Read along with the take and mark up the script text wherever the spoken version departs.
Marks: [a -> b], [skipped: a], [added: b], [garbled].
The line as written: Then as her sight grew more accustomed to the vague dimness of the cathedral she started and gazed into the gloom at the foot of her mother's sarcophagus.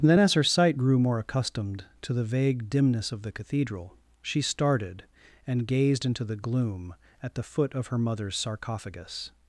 Then as her sight grew more accustomed to the vague dimness of the cathedral she started and gazed into the gloom at the foot of her mother's sarcophagus.